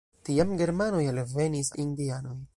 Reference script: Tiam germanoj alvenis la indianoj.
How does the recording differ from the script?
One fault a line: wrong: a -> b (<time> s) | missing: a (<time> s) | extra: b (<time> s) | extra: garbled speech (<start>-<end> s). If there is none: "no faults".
no faults